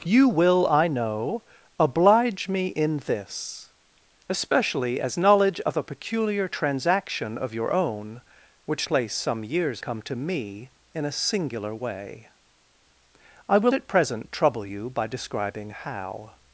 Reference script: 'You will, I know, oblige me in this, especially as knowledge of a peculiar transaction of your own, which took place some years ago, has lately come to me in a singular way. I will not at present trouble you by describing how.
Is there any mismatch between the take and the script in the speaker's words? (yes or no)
yes